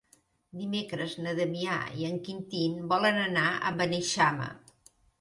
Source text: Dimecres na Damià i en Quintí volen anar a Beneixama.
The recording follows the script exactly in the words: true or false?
true